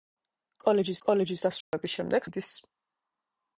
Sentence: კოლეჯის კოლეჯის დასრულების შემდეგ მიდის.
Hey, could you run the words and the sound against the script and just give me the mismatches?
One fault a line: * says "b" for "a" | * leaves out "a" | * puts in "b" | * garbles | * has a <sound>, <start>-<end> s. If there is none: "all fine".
* has a dropout, 1.6-1.7 s